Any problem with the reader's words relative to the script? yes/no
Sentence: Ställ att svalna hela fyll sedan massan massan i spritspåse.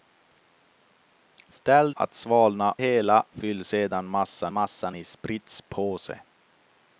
no